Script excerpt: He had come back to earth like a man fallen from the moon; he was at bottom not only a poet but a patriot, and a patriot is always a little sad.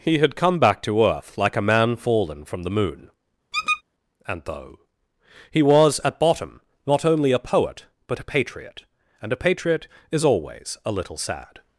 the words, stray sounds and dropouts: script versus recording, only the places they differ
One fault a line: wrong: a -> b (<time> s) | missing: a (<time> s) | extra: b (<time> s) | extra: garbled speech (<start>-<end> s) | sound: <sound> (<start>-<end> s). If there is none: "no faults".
sound: squeak (3.5-3.8 s)
extra: and though (4.3 s)